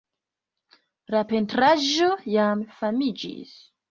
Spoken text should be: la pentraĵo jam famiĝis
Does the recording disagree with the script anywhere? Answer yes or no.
no